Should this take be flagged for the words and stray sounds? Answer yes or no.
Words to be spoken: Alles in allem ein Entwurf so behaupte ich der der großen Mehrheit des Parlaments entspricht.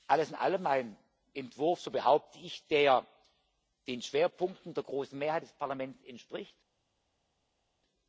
yes